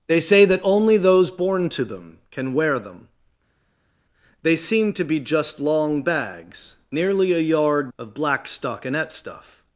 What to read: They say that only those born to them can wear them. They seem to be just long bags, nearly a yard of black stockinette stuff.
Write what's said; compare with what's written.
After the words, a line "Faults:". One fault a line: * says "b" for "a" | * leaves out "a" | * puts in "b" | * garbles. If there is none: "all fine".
They say that only those born to them can wear them. They seem to be just long bags, nearly a yard of black stockinette stuff.
Faults:
all fine